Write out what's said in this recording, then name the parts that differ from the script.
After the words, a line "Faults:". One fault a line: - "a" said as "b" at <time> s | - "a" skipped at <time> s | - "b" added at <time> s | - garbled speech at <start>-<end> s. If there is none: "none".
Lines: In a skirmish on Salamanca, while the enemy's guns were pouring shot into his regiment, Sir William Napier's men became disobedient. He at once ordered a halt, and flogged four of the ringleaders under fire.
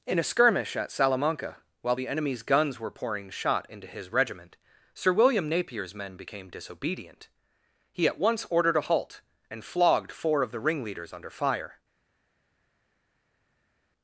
In a skirmish at Salamanca, while the enemy's guns were pouring shot into his regiment, Sir William Napier's men became disobedient. He at once ordered a halt, and flogged four of the ringleaders under fire.
Faults:
- "on" said as "at" at 0.8 s